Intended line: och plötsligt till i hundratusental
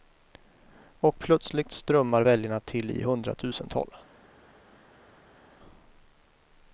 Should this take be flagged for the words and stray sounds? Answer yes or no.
yes